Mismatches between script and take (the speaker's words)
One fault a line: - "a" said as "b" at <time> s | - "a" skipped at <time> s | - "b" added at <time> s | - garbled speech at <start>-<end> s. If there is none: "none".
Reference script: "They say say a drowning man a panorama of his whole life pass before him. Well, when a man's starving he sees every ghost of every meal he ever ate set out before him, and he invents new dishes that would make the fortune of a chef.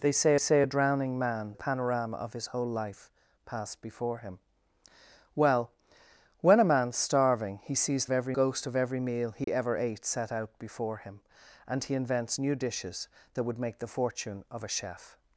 none